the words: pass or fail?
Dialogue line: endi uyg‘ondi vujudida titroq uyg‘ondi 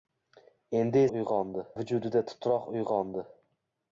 pass